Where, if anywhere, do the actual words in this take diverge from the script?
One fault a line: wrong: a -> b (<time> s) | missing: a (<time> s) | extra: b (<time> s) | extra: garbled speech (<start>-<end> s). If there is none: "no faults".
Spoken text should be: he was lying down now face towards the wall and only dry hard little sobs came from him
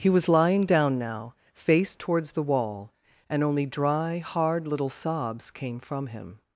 no faults